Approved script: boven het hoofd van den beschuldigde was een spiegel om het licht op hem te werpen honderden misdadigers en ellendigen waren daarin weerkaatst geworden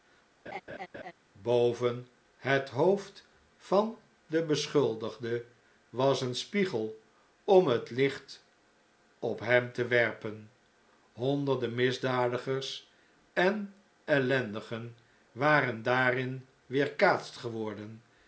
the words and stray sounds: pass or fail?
fail